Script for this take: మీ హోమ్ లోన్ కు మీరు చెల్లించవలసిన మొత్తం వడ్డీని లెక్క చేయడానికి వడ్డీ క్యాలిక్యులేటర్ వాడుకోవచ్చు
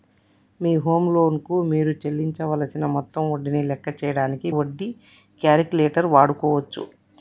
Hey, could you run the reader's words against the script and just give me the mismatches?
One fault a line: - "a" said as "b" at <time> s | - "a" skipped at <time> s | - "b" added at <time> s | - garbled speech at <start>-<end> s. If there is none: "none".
none